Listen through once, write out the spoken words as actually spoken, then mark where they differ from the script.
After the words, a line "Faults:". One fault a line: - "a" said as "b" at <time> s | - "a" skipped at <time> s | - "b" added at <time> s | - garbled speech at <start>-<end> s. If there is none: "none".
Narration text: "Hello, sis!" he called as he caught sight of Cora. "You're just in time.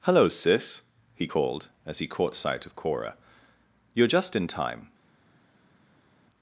"Hello, sis!" he called as he caught sight of Cora. "You're just in time.
Faults:
none